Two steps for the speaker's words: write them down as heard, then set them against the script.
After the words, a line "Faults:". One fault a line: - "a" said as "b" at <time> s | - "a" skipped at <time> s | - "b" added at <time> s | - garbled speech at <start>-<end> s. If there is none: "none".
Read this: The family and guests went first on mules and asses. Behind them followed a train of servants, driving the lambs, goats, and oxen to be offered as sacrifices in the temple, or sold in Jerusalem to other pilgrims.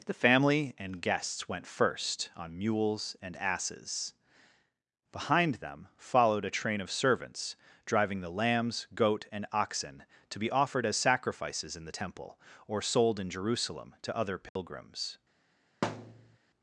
The family and guests went first on mules and asses. Behind them followed a train of servants, driving the lambs, goat, and oxen to be offered as sacrifices in the temple, or sold in Jerusalem to other pilgrims.
Faults:
- "goats" said as "goat" at 8.9 s